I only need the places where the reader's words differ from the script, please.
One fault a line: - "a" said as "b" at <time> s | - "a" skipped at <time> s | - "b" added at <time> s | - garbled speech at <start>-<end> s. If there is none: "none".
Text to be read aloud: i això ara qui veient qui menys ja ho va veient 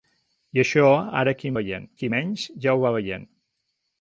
none